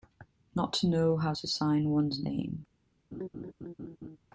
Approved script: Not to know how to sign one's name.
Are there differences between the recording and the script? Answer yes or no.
no